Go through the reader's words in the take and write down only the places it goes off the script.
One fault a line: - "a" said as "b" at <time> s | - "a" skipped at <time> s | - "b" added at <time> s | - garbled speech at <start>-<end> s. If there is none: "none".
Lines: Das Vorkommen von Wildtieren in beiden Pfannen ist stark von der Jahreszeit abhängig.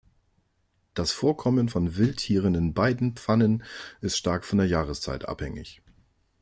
none